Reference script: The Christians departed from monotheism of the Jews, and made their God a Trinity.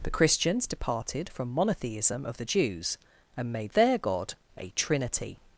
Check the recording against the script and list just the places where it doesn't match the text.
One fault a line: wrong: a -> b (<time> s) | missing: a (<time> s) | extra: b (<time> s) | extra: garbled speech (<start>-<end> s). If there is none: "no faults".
no faults